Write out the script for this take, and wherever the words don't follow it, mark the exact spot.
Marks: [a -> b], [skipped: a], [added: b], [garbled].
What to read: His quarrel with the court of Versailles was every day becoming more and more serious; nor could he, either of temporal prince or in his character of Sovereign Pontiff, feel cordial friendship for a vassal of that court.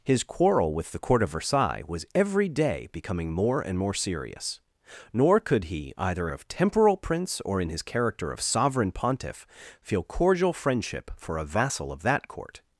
His quarrel with the court of Versailles was every day becoming more and more serious; nor could he, either of temporal prince or in his character of Sovereign Pontiff, feel cordial friendship for a vassal of that court.